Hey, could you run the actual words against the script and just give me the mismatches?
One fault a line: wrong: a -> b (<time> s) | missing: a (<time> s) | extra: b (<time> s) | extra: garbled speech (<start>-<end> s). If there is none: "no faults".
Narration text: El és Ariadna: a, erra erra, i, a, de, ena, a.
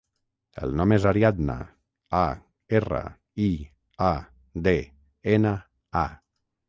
extra: nom (0.8 s)
missing: erra (3.0 s)